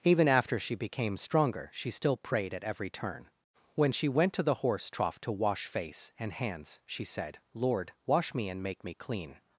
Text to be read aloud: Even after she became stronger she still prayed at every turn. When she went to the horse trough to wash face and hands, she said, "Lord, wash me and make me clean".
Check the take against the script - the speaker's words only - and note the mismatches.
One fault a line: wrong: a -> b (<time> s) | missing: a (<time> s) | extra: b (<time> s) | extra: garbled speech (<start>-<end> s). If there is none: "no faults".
no faults